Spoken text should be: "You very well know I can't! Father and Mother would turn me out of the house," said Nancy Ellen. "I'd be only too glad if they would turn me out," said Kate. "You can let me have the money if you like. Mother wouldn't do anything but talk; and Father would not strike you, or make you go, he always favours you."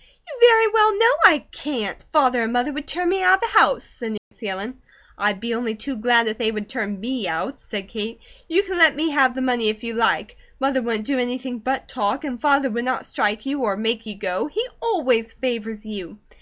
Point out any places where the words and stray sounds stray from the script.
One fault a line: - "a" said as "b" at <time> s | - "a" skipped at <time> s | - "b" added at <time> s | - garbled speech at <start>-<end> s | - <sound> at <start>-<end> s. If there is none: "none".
- dropout at 4.2-4.3 s